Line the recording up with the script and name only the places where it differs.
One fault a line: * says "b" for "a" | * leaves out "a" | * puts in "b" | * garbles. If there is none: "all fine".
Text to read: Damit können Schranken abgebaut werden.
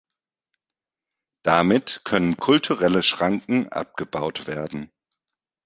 * puts in "kulturelle"